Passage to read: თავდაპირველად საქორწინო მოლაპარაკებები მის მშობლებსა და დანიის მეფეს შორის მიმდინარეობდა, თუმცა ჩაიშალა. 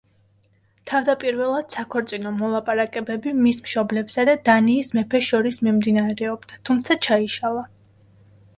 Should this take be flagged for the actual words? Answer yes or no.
no